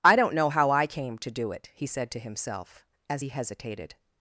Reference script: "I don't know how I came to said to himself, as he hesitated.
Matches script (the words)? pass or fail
fail